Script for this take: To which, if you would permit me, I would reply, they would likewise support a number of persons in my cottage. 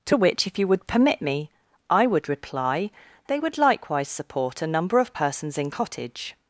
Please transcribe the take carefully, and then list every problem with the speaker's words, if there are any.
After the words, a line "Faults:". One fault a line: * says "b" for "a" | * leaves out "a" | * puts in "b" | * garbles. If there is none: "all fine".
To which, if you would permit me, I would reply, they would likewise support a number of persons in cottage.
Faults:
* leaves out "my"